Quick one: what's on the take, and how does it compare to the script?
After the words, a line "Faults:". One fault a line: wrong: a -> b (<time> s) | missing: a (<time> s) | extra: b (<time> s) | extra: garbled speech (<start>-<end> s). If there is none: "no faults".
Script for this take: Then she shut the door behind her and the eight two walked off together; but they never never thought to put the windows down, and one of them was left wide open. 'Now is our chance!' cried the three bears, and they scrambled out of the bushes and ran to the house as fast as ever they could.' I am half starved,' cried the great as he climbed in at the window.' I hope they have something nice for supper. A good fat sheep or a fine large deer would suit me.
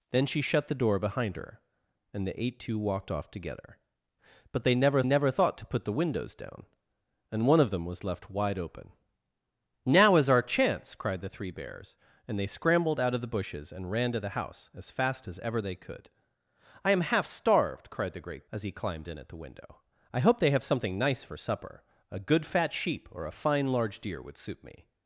Then she shut the door behind her and the eight two walked off together; but they never never thought to put the windows down, and one of them was left wide open. 'Now is our chance!' cried the three bears, and they scrambled out of the bushes and ran to the house as fast as ever they could.' I am half starved,' cried the great as he climbed in at the window.' I hope they have something nice for supper. A good fat sheep or a fine large deer would suit me.
Faults:
no faults